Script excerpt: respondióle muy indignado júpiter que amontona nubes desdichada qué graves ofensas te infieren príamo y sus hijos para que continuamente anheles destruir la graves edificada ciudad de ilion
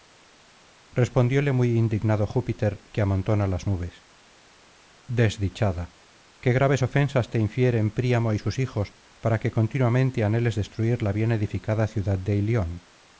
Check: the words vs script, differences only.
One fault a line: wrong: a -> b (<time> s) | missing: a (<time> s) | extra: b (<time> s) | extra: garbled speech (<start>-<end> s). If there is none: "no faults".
extra: las (3.5 s)
wrong: graves -> bien (11.1 s)